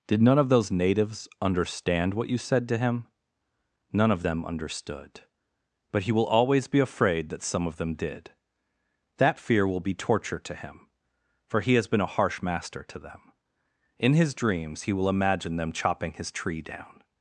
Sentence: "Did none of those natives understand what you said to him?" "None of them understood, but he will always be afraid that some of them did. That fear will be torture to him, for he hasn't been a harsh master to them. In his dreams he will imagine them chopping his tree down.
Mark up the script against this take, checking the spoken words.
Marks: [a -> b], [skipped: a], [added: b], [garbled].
"Did none of those natives understand what you said to him?" "None of them understood, but he will always be afraid that some of them did. That fear will be torture to him, for he [hasn't -> has] been a harsh master to them. In his dreams he will imagine them chopping his tree down.